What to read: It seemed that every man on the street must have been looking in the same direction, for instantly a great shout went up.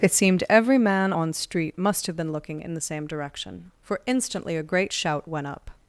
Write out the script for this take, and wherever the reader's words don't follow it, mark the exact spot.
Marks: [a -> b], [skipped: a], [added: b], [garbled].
It seemed [skipped: that] every man on [skipped: the] street must have been looking in the same direction, for instantly a great shout went up.